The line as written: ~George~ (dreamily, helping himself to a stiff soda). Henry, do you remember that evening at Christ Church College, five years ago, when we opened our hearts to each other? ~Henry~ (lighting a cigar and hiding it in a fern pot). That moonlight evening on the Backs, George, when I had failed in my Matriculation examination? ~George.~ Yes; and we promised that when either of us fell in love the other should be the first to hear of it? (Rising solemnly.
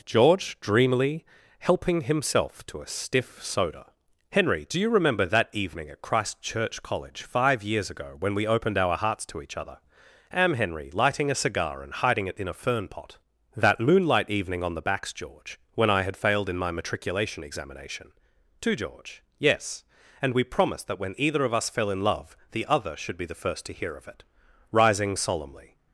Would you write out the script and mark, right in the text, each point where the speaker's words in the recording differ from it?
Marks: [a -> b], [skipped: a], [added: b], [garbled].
~George~ (dreamily, helping himself to a stiff soda). Henry, do you remember that evening at Christ Church College, five years ago, when we opened our hearts to each other? [added: am] ~Henry~ (lighting a cigar and hiding it in a fern pot). That moonlight evening on the Backs, George, when I had failed in my Matriculation examination? [added: to] ~George.~ Yes; and we promised that when either of us fell in love the other should be the first to hear of it? (Rising solemnly.